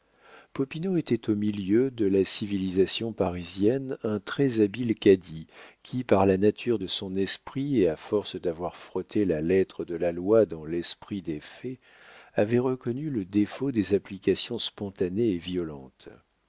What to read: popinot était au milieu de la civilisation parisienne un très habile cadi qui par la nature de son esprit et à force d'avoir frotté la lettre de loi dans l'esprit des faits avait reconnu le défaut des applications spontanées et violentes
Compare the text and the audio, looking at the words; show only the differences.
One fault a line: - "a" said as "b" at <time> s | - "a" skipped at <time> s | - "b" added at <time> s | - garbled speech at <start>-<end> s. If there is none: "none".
- "la" added at 10.0 s